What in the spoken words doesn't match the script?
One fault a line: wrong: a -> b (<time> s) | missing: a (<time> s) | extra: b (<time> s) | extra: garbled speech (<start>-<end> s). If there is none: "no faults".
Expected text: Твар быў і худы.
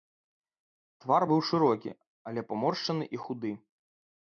extra: шырокі але паморшчаны (1.5 s)